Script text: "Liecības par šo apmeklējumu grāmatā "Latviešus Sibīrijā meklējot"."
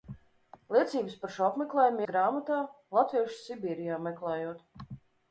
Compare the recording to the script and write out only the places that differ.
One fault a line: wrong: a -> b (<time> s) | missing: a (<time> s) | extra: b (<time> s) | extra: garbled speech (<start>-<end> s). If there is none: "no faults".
no faults